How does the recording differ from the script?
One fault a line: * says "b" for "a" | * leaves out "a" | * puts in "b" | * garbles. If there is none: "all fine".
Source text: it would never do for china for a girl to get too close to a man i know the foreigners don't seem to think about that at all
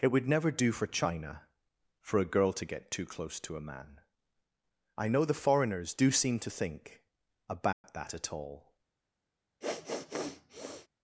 * says "do" for "don't"